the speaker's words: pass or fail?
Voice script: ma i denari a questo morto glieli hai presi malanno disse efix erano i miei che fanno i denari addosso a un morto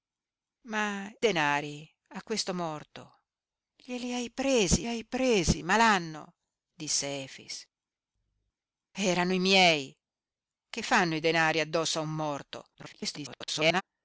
fail